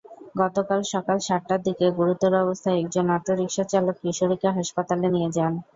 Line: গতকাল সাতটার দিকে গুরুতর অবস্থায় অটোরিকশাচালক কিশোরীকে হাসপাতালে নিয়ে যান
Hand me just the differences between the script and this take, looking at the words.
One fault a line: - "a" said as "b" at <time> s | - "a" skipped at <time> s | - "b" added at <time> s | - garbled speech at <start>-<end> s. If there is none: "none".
- "সকাল" added at 0.9 s
- "একজন" added at 2.8 s